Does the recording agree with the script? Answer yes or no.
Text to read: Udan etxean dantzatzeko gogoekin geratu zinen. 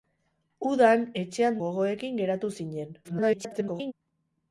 no